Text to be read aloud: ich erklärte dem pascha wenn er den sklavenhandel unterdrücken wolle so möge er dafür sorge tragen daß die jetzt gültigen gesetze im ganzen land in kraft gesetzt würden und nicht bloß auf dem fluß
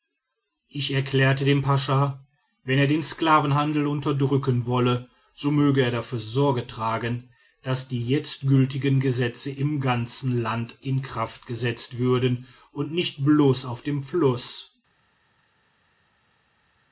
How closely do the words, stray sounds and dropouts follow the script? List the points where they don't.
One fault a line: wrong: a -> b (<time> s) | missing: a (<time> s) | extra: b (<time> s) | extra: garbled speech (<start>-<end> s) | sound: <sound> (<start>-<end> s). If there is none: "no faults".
no faults